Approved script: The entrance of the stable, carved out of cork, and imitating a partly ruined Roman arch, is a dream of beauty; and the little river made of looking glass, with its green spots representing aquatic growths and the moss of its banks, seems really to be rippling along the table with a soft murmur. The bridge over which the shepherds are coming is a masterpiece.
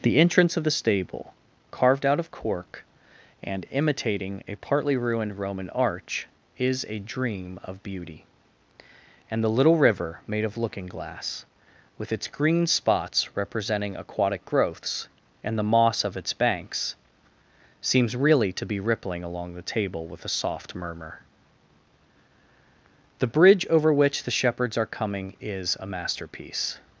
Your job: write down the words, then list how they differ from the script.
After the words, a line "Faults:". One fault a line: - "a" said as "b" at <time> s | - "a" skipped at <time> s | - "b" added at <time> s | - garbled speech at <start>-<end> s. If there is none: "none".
The entrance of the stable, carved out of cork, and imitating a partly ruined Roman arch, is a dream of beauty; and the little river made of looking glass, with its green spots representing aquatic growths and the moss of its banks, seems really to be rippling along the table with a soft murmur. The bridge over which the shepherds are coming is a masterpiece.
Faults:
none